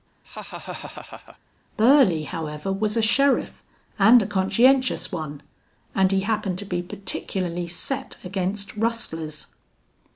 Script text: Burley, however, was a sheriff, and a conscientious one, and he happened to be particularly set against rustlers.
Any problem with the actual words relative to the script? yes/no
no